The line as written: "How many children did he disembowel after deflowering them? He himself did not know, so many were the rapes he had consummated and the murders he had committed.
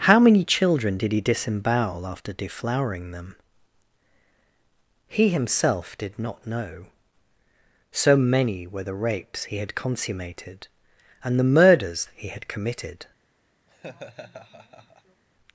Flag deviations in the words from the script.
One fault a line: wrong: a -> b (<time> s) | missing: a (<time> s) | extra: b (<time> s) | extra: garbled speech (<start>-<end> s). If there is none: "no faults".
no faults